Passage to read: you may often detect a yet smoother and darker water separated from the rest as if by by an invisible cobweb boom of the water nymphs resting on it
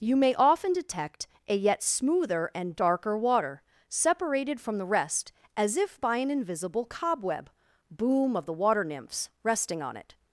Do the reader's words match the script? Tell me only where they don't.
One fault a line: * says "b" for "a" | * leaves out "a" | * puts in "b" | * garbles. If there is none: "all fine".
* leaves out "by"